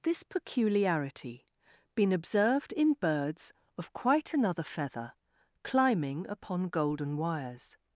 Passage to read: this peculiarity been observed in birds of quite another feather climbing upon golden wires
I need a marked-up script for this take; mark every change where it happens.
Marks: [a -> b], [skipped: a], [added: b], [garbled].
this peculiarity been observed in birds of quite another feather climbing upon golden wires